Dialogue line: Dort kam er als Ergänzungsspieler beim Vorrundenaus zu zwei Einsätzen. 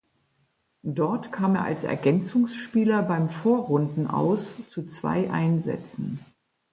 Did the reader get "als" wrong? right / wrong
right